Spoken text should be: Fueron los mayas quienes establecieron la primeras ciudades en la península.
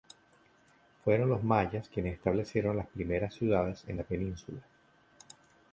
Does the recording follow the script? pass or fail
fail